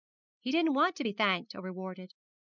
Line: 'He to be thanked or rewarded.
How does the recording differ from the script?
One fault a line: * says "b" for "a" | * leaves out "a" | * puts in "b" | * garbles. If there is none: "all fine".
* puts in "didn't want"